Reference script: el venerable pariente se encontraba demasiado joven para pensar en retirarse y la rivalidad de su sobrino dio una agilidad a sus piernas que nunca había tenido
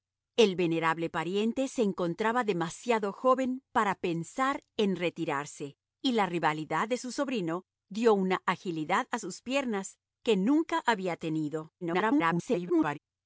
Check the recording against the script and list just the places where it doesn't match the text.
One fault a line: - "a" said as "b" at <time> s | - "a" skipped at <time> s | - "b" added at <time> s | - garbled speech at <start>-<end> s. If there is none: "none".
- garbled speech at 11.8-13.0 s